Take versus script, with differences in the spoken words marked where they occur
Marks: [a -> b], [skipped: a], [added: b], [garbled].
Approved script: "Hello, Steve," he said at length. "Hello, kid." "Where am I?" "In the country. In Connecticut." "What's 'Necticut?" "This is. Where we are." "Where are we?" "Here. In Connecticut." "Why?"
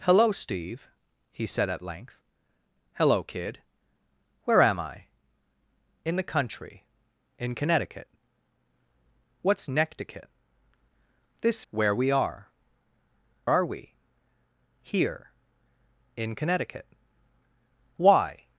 "Hello, Steve," he said at length. "Hello, kid." "Where am I?" "In the country. In Connecticut." "What's 'Necticut?" "This [skipped: is.] Where we are." [skipped: "Where] are we?" "Here. In Connecticut." "Why?"